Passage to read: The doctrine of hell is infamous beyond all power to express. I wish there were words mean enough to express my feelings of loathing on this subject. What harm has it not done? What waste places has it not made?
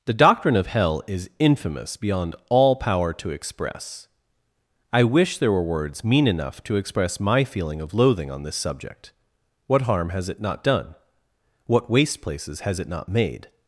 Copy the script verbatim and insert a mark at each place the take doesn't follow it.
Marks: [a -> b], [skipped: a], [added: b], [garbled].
The doctrine of hell is infamous beyond all power to express. I wish there were words mean enough to express my [feelings -> feeling] of loathing on this subject. What harm has it not done? What waste places has it not made?